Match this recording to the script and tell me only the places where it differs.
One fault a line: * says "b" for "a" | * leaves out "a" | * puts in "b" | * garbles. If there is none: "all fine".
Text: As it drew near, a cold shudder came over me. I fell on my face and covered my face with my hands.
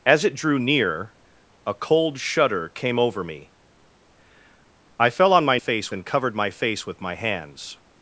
all fine